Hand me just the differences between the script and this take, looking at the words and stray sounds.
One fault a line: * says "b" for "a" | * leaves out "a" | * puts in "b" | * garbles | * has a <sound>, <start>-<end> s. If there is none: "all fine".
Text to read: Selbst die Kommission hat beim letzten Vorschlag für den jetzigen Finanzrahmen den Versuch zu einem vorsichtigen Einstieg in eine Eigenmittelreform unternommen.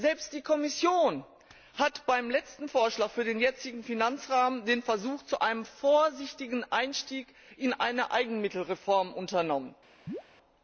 * has a chirp, 10.1-10.2 s